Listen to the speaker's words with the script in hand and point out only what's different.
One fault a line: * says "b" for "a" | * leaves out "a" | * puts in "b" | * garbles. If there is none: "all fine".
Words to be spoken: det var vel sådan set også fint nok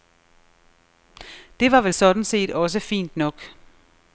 all fine